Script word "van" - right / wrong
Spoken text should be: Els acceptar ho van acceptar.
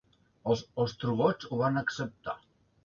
right